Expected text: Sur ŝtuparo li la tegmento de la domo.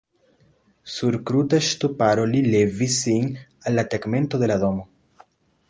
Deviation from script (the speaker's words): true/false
true